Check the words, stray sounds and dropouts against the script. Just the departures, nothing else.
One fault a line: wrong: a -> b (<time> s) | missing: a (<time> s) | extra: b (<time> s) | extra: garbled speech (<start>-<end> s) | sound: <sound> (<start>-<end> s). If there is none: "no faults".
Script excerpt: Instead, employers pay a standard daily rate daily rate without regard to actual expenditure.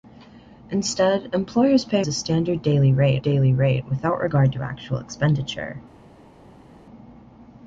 no faults